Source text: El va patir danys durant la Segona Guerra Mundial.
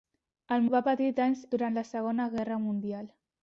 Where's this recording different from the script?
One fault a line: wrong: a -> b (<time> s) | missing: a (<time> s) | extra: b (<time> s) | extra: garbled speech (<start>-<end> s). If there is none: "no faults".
no faults